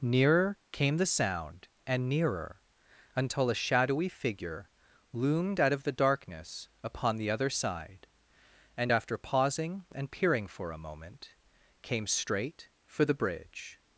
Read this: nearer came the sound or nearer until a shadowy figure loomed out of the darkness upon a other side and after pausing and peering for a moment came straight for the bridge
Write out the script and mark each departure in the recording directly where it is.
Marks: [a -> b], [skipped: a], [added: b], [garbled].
nearer came the sound [or -> and] nearer until a shadowy figure loomed out of the darkness upon [a -> the] other side and after pausing and peering for a moment came straight for the bridge